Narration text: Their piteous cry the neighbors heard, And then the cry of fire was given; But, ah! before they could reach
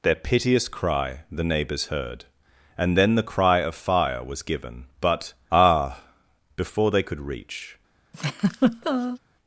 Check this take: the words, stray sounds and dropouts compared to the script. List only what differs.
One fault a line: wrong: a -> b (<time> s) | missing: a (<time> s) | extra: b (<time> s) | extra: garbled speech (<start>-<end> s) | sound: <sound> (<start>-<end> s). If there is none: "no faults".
sound: laugh (8.1-9.2 s)